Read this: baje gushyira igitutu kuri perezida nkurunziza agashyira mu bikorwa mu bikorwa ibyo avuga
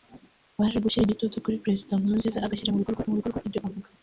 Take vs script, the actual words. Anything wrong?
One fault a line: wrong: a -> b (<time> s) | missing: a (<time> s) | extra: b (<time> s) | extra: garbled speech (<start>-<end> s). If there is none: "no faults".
no faults